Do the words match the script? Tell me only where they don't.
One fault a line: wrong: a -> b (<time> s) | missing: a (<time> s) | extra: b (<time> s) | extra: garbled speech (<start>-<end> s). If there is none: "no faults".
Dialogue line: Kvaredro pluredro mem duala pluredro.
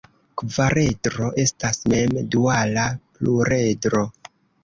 wrong: pluredro -> estas (1.4 s)